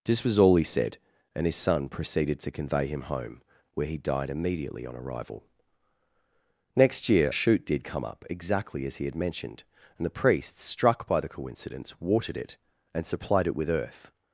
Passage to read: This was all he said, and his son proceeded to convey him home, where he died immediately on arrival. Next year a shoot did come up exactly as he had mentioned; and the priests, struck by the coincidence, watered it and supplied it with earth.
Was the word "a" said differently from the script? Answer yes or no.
yes